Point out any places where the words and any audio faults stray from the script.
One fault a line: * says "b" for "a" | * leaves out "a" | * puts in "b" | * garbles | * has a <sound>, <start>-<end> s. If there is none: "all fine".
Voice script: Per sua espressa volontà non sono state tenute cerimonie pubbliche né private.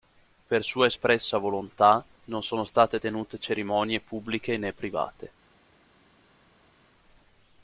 all fine